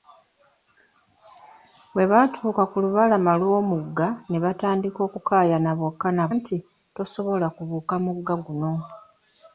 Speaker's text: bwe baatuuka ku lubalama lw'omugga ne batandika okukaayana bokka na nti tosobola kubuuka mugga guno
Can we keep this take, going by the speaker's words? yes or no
yes